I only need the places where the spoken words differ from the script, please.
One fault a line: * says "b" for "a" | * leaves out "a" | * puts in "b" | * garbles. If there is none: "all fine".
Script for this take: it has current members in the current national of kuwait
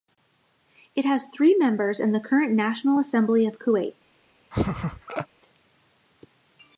* says "three" for "current"
* puts in "assembly"